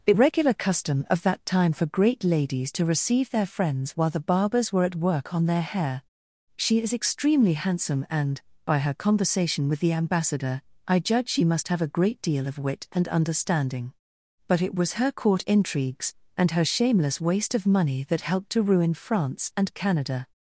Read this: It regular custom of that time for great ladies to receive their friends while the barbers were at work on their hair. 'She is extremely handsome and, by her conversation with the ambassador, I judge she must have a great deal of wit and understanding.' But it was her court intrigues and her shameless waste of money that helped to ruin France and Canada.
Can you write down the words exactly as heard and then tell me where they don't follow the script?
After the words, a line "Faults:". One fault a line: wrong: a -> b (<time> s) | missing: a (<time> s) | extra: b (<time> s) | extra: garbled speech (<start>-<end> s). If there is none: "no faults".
It regular custom of that time for great ladies to receive their friends while the barbers were at work on their hair. 'She is extremely handsome and, by her conversation with the ambassador, I judge she must have a great deal of wit and understanding.' But it was her court intrigues and her shameless waste of money that helped to ruin France and Canada.
Faults:
no faults